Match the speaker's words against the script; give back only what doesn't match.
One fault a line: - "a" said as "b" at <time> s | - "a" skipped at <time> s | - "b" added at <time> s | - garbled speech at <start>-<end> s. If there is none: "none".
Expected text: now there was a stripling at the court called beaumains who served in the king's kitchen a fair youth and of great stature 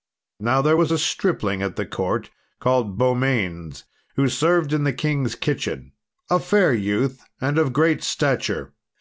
none